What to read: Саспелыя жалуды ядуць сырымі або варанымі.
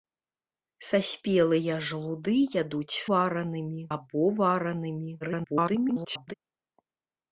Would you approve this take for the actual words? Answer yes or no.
no